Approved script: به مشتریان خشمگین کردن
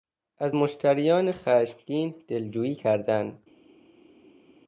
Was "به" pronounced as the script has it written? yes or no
no